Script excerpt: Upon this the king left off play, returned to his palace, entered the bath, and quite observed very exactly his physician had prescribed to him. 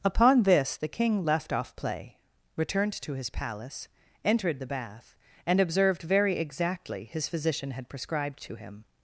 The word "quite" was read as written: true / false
false